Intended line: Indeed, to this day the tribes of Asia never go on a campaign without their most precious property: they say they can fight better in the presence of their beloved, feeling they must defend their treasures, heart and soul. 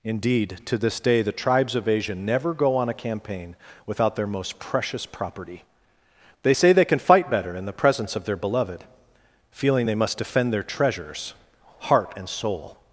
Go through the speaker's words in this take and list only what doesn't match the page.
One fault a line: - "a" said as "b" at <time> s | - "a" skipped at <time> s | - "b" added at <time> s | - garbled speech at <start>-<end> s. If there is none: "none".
none